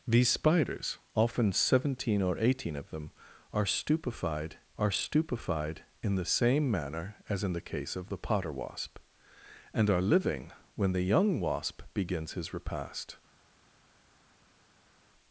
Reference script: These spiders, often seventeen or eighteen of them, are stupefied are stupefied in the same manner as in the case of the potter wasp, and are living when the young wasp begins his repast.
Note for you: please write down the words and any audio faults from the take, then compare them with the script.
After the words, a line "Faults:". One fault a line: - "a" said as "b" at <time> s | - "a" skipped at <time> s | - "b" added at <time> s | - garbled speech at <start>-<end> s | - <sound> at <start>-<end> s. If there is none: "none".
These spiders, often seventeen or eighteen of them, are stupefied are stupefied in the same manner as in the case of the potter wasp, and are living when the young wasp begins his repast.
Faults:
none